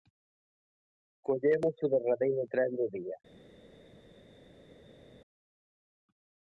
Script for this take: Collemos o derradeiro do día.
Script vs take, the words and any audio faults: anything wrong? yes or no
yes